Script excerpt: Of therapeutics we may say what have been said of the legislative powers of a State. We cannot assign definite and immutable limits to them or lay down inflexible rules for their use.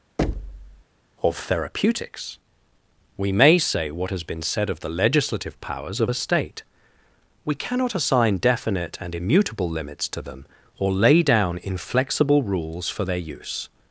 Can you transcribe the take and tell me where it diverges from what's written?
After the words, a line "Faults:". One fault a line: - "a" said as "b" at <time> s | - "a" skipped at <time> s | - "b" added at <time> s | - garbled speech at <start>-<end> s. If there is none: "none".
Of therapeutics we may say what has been said of the legislative powers of a State. We cannot assign definite and immutable limits to them or lay down inflexible rules for their use.
Faults:
- "have" said as "has" at 4.1 s